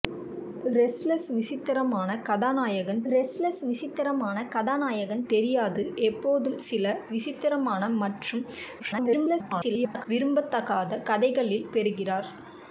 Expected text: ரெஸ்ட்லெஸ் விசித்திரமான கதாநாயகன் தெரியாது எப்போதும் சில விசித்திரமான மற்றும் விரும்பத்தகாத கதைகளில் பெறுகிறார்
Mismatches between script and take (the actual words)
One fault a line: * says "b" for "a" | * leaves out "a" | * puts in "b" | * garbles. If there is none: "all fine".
* puts in "ரெஸ்ட்லெஸ் விசித்திரமான கதாநாயகன்"
* garbles